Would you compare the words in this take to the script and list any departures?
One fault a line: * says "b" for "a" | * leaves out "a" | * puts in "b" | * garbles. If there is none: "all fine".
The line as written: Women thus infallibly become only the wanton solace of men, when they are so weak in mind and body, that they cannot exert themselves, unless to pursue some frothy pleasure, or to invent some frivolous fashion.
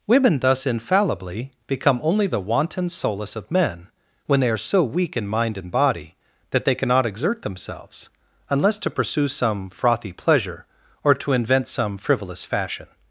all fine